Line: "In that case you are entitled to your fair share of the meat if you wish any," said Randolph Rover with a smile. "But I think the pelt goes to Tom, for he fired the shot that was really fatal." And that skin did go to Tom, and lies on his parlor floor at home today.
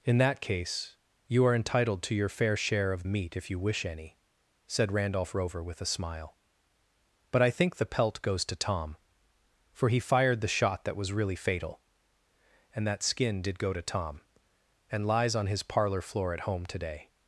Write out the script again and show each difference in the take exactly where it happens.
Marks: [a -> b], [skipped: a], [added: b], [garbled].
"In that case you are entitled to your fair share of [skipped: the] meat if you wish any," said Randolph Rover with a smile. "But I think the pelt goes to Tom, for he fired the shot that was really fatal." And that skin did go to Tom, and lies on his parlor floor at home today.